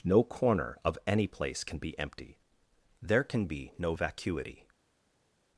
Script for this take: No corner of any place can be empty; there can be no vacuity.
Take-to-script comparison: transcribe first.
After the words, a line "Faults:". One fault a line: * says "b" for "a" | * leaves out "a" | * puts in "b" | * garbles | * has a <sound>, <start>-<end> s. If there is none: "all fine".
No corner of any place can be empty; there can be no vacuity.
Faults:
all fine